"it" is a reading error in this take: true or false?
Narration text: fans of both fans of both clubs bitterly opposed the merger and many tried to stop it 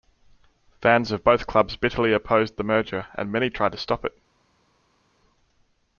false